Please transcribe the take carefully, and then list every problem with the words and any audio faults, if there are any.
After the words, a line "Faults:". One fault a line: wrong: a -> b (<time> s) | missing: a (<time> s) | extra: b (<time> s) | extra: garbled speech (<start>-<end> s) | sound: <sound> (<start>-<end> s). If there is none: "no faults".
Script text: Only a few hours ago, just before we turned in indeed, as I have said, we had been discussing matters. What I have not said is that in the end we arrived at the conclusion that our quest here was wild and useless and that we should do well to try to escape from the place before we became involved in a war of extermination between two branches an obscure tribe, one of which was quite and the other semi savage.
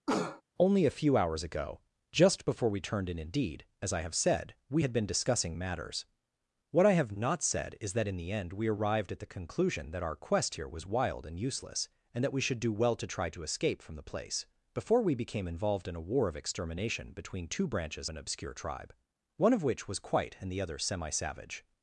Only a few hours ago, just before we turned in indeed, as I have said, we had been discussing matters. What I have not said is that in the end we arrived at the conclusion that our quest here was wild and useless and that we should do well to try to escape from the place before we became involved in a war of extermination between two branches an obscure tribe, one of which was quite and the other semi savage.
Faults:
sound: cough (0.1-0.4 s)